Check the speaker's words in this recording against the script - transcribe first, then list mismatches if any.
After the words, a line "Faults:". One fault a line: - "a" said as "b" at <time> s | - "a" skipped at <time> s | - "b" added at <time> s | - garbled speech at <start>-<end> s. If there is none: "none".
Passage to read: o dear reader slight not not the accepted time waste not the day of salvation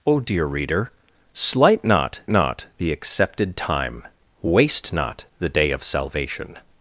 o dear reader slight not not the accepted time waste not the day of salvation
Faults:
none